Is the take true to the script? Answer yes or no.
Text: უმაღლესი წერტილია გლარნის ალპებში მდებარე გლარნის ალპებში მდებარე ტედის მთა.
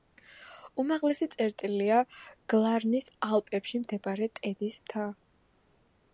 no